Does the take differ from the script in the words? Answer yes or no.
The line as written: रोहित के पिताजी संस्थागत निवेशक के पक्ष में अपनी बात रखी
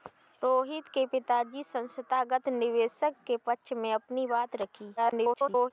yes